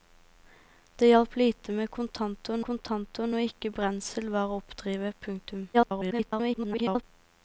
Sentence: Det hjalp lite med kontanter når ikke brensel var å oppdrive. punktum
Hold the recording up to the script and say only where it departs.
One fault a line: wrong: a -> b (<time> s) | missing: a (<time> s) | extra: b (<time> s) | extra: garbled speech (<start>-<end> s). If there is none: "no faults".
extra: kontanter (2.7 s)
extra: garbled speech (5.7-7.0 s)